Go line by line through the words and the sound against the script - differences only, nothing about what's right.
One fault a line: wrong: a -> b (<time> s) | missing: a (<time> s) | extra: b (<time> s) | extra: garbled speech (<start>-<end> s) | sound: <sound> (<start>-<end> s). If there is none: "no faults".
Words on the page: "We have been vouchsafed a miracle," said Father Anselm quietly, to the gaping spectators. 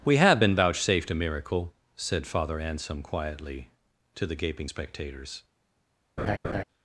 sound: laugh (6.2-6.6 s)